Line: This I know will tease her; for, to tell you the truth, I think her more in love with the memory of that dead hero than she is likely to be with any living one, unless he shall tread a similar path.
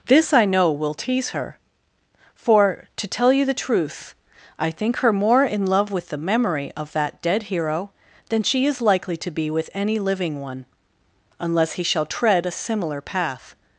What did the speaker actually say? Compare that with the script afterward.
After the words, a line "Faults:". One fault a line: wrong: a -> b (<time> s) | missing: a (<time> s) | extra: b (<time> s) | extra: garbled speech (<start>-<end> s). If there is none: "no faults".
This I know will tease her; for, to tell you the truth, I think her more in love with the memory of that dead hero than she is likely to be with any living one, unless he shall tread a similar path.
Faults:
no faults